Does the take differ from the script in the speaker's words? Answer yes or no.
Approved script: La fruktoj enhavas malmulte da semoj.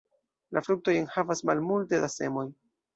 no